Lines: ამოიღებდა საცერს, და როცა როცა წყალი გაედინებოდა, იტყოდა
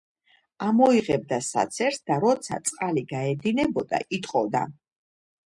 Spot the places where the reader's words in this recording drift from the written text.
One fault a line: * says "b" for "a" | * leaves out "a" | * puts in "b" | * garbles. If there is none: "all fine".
* leaves out "როცა"